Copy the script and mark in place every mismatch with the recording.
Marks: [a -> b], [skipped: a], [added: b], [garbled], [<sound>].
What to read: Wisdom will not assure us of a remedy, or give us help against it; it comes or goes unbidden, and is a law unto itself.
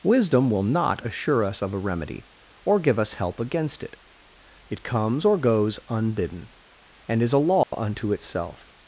Wisdom will not assure us of a remedy, or give us help against it; it comes or goes unbidden, and is a law [dropout] unto itself.